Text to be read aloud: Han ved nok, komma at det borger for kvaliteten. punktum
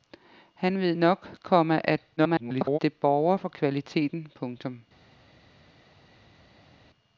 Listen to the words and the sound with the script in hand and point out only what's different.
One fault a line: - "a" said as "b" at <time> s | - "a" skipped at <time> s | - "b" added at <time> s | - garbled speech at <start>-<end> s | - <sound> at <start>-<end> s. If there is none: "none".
- garbled speech at 2.2-2.8 s